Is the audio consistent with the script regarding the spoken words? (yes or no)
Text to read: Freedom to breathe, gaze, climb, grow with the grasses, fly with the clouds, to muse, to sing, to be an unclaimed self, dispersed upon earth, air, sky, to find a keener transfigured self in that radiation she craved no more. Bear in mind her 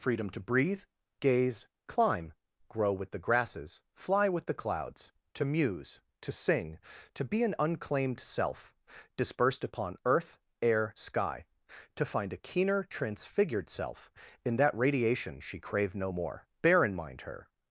yes